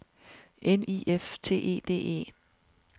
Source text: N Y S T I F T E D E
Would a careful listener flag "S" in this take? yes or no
yes